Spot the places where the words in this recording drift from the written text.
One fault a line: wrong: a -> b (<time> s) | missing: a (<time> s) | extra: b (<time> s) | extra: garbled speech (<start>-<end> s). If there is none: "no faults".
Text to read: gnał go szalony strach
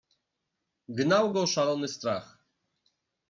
no faults